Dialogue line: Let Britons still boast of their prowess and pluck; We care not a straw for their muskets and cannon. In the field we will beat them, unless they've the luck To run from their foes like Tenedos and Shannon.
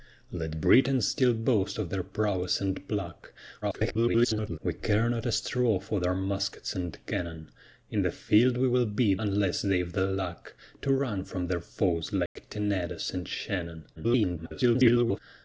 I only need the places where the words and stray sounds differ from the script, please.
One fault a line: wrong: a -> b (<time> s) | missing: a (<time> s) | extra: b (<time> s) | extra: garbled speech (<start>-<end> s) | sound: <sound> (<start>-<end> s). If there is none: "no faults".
extra: garbled speech (3.6-4.6 s)
missing: them (9.2 s)
sound: dropout (12.3-12.4 s)
extra: garbled speech (14.0-15.2 s)